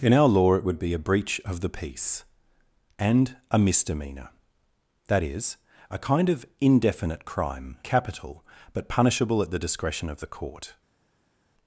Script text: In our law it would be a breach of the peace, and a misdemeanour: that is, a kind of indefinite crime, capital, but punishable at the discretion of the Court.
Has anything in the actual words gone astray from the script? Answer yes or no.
no